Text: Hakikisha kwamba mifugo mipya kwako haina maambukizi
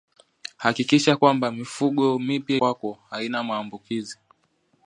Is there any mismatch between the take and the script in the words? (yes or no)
no